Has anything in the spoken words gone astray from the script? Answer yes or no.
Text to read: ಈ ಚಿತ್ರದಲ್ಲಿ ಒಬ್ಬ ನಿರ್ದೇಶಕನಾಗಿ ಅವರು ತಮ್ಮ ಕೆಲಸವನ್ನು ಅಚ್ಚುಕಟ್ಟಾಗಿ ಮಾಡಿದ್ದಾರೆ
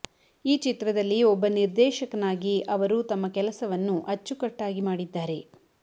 no